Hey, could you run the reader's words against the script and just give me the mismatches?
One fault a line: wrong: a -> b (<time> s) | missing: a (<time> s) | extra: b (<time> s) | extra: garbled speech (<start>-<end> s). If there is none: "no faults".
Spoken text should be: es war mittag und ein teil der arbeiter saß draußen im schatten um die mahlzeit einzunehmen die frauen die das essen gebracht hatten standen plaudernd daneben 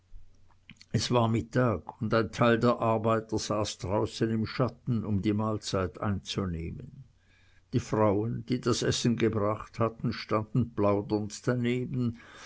no faults